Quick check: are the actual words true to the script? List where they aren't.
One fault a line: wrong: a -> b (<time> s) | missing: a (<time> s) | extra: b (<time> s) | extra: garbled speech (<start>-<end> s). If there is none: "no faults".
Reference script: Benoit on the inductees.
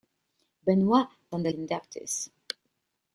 no faults